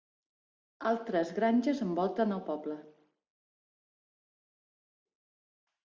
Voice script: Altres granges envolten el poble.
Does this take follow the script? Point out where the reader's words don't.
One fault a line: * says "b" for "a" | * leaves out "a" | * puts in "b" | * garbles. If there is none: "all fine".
all fine